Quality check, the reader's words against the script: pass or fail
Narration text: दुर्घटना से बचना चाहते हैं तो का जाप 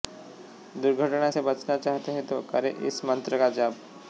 fail